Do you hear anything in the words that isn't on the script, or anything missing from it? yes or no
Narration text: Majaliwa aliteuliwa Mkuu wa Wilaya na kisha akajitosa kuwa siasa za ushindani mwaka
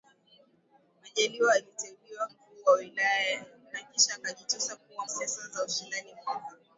no